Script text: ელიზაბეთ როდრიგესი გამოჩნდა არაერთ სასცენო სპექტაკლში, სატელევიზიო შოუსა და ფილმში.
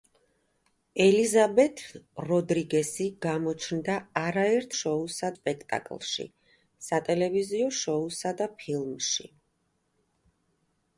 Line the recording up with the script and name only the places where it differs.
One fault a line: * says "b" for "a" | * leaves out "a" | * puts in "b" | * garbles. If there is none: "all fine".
* says "შოუსა" for "სასცენო"